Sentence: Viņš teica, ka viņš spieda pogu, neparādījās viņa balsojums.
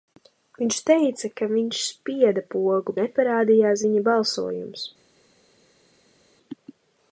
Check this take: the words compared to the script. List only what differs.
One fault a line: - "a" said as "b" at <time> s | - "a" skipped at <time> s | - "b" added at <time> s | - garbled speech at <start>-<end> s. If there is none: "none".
none